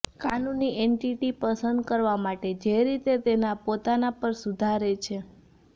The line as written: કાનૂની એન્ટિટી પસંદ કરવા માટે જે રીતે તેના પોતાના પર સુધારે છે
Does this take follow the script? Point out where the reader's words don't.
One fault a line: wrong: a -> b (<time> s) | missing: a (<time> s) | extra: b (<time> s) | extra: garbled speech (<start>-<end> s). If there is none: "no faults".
no faults